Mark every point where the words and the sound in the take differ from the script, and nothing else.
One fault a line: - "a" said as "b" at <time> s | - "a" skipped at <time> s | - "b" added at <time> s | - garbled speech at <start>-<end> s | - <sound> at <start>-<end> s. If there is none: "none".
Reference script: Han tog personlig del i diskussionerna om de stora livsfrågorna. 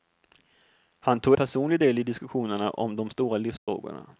- dropout at 3.6-3.7 s